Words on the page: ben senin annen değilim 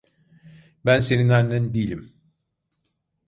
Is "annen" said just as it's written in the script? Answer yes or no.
yes